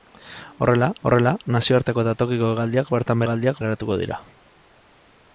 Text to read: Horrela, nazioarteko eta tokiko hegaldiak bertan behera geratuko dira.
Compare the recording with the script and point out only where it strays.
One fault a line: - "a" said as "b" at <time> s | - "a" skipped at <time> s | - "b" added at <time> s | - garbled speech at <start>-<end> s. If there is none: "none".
- "horrela" added at 1.1 s
- "behera" said as "hegaldiak" at 3.2 s